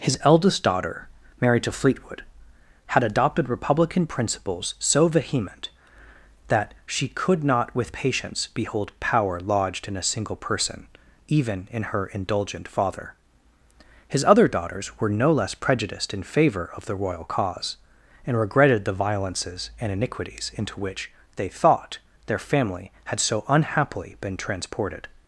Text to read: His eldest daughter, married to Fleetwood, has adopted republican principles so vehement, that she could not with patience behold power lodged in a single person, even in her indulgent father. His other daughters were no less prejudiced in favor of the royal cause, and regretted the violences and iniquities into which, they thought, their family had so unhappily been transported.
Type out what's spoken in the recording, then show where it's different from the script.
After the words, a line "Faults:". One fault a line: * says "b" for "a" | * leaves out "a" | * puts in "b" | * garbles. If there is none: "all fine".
His eldest daughter, married to Fleetwood, had adopted republican principles so vehement, that she could not with patience behold power lodged in a single person, even in her indulgent father. His other daughters were no less prejudiced in favor of the royal cause, and regretted the violences and iniquities into which, they thought, their family had so unhappily been transported.
Faults:
* says "had" for "has"